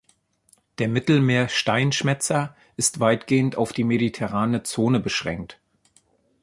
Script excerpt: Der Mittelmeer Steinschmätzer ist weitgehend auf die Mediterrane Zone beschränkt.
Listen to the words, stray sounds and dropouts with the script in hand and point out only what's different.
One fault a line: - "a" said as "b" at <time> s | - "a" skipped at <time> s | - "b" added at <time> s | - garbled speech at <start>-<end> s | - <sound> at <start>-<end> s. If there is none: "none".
none